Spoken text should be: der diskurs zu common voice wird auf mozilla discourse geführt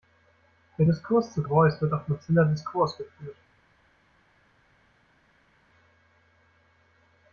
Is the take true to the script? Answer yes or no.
no